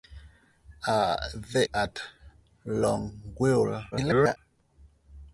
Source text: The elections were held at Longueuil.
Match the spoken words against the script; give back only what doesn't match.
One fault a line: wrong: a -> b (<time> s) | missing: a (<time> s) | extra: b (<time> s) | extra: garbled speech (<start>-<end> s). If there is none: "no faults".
missing: elections were held (1.7 s)
extra: garbled speech (3.9-4.4 s)